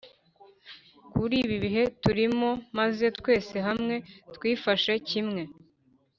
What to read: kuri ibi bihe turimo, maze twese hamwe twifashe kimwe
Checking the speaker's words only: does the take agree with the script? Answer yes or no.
yes